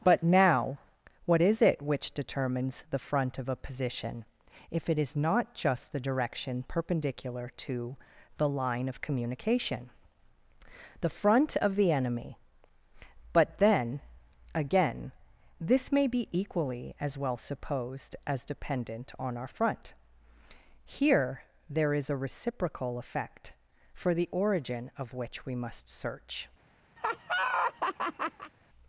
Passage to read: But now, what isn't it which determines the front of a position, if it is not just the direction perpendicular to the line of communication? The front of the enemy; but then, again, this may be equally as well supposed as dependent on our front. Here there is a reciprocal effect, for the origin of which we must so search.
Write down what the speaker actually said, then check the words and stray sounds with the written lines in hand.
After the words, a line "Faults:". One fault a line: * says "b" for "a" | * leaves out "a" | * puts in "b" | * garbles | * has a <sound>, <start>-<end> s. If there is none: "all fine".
But now, what is it which determines the front of a position, if it is not just the direction perpendicular to the line of communication? The front of the enemy; but then, again, this may be equally as well supposed as dependent on our front. Here there is a reciprocal effect, for the origin of which we must search.
Faults:
* says "is" for "isn't"
* leaves out "so"
* has a laugh, 27.0-28.5 s